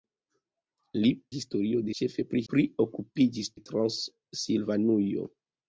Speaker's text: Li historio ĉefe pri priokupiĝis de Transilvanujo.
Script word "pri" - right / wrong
right